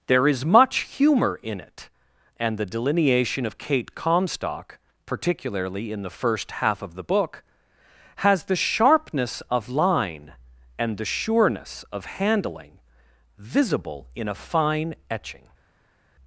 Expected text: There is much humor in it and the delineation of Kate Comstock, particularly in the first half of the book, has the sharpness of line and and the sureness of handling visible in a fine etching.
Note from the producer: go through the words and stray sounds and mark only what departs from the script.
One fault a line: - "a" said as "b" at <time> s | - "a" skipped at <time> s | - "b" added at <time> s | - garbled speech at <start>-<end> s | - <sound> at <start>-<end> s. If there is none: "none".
- "and" skipped at 11.0 s